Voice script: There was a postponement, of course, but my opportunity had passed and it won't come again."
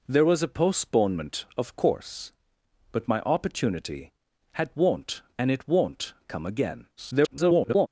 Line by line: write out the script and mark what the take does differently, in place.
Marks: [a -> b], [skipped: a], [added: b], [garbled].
There was a postponement, of course, but my opportunity had [passed -> won't] and it won't come again." [garbled]